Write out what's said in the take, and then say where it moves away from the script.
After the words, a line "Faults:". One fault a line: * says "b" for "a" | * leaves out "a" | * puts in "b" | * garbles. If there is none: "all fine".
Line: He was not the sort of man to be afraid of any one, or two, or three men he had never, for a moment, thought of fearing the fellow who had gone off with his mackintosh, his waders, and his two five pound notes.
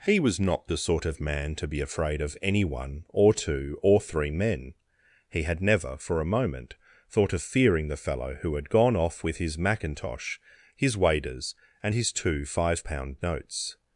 He was not the sort of man to be afraid of any one, or two, or three men he had never, for a moment, thought of fearing the fellow who had gone off with his mackintosh, his waders, and his two five pound notes.
Faults:
all fine